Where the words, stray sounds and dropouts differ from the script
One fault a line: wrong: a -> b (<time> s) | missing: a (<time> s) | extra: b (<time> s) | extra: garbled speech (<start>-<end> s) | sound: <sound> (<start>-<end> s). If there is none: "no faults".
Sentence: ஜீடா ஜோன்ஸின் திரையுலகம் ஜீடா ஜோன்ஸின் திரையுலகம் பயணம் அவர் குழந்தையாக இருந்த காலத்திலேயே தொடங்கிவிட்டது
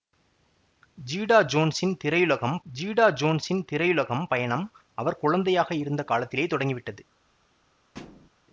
sound: thud (7.9-8.3 s)